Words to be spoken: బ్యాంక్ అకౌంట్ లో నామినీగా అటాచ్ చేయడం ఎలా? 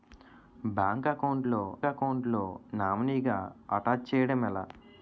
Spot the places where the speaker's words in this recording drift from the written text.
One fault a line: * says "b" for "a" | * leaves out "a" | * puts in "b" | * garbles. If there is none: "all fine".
* puts in "అకౌంట్ లో"